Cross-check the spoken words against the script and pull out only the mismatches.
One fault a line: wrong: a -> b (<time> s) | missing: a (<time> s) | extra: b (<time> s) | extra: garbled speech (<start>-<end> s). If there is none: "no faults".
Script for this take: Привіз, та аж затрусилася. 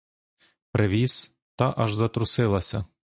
no faults